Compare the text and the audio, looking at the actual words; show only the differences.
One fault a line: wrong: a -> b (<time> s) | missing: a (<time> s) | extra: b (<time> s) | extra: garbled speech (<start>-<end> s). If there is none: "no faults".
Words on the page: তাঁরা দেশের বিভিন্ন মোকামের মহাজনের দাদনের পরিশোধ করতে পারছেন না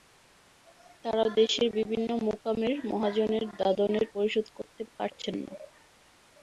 no faults